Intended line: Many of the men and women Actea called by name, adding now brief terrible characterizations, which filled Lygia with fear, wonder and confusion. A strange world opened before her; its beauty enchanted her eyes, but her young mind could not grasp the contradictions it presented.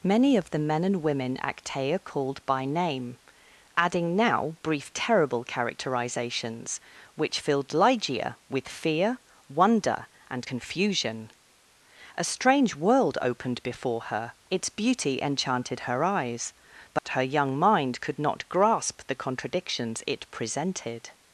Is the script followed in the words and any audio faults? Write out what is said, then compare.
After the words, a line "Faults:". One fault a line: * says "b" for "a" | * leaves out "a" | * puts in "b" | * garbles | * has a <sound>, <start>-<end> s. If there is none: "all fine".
Many of the men and women Actea called by name, adding now brief terrible characterizations, which filled Lygia with fear, wonder and confusion. A strange world opened before her; its beauty enchanted her eyes, but her young mind could not grasp the contradictions it presented.
Faults:
* has a dropout, 17.0-17.1 s